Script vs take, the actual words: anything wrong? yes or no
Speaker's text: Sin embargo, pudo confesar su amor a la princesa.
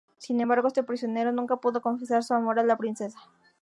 yes